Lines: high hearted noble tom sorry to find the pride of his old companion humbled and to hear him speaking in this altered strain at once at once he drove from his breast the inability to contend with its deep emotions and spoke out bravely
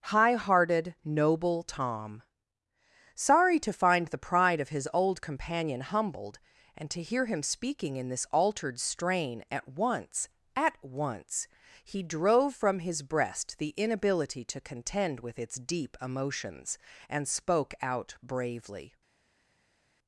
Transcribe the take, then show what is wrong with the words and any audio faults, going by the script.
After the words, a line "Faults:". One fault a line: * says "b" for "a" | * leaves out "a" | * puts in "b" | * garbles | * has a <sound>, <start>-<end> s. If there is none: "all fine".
high hearted noble tom sorry to find the pride of his old companion humbled and to hear him speaking in this altered strain at once at once he drove from his breast the inability to contend with its deep emotions and spoke out bravely
Faults:
all fine